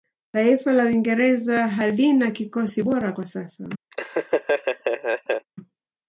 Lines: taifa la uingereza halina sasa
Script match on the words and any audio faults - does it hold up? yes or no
no